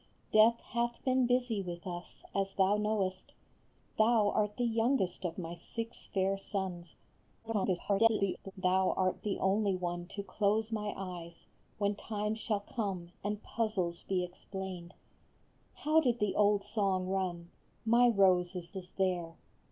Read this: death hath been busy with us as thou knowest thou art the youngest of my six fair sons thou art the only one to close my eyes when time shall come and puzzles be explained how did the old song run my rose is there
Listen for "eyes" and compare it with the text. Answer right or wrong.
right